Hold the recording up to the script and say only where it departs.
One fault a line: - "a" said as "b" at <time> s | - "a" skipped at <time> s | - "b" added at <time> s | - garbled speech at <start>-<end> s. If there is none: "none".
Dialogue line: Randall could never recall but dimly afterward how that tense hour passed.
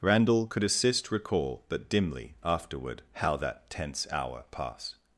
- "never" said as "assist" at 0.6 s